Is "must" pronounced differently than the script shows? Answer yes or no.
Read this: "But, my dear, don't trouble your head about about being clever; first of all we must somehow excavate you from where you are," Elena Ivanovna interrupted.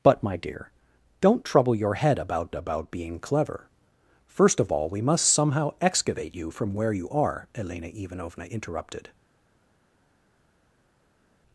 no